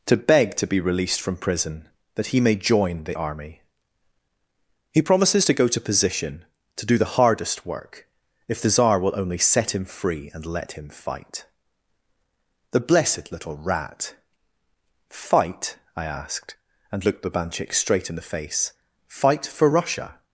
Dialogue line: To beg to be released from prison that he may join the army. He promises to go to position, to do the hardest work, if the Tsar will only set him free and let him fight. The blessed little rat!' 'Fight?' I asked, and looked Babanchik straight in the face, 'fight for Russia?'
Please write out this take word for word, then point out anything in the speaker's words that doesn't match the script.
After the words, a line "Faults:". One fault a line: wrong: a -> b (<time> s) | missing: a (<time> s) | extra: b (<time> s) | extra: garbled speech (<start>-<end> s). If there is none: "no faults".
To beg to be released from prison that he may join the army. He promises to go to position, to do the hardest work, if the Tsar will only set him free and let him fight. The blessed little rat!' 'Fight?' I asked, and looked Babanchik straight in the face, 'fight for Russia?'
Faults:
no faults